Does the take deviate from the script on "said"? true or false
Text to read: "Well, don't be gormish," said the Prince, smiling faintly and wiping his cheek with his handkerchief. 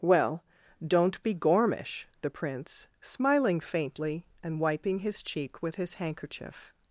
true